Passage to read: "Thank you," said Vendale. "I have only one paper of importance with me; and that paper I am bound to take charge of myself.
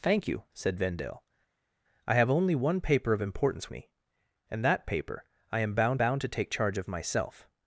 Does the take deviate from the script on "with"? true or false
true